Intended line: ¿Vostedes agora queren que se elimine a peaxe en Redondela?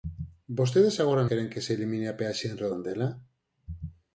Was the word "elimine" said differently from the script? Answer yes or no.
no